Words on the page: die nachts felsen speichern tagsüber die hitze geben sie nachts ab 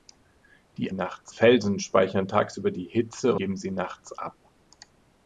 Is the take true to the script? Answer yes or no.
yes